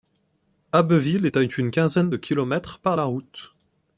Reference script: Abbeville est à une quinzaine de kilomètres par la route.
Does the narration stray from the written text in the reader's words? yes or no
no